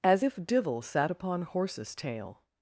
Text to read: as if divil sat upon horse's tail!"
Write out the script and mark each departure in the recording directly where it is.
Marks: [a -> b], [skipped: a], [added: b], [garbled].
as if divil sat upon horse's tail!"